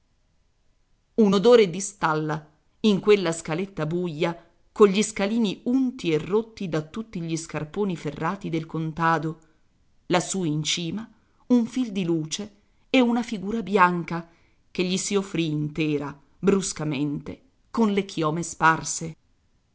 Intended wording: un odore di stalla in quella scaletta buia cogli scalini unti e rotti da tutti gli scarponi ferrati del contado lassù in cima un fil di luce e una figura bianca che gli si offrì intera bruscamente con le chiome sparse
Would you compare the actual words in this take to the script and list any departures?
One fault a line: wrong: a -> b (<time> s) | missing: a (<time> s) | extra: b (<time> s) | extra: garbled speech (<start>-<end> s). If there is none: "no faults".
no faults